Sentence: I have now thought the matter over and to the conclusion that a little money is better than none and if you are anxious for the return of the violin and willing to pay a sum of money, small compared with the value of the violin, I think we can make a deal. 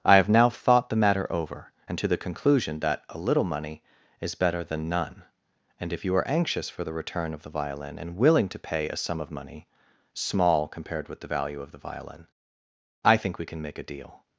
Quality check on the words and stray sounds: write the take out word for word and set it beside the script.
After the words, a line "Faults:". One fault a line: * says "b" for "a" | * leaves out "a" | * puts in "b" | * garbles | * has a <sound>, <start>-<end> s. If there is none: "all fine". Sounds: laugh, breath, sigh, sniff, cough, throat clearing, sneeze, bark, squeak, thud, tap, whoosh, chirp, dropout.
I have now thought the matter over and to the conclusion that a little money is better than none and if you are anxious for the return of the violin and willing to pay a sum of money, small compared with the value of the violin, I think we can make a deal.
Faults:
all fine